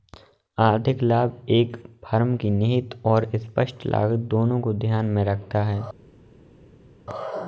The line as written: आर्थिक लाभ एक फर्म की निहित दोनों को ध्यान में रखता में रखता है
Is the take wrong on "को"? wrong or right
right